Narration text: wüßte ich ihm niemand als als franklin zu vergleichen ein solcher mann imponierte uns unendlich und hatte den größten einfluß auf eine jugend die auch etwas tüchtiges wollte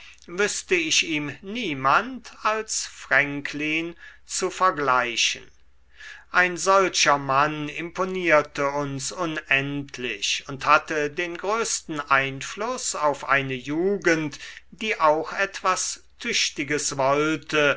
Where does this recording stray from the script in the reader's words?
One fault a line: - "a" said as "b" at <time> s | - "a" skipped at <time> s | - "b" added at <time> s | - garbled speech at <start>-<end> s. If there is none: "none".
- "als" skipped at 2.9 s